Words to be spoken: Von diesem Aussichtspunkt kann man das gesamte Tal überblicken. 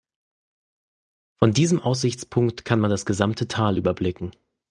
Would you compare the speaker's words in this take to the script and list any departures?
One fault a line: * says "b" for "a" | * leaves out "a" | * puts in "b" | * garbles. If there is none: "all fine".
all fine